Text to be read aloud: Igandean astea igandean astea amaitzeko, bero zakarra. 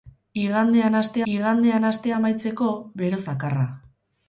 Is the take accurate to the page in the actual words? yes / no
yes